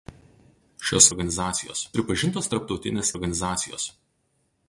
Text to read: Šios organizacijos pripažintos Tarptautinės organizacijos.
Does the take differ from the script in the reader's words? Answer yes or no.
no